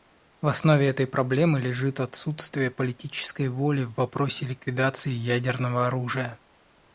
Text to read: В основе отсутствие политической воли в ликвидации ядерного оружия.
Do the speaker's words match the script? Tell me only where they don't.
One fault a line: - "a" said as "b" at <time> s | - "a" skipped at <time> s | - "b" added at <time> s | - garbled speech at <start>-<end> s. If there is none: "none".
- "этой проблемы лежит" added at 0.9 s
- "вопросе" added at 3.9 s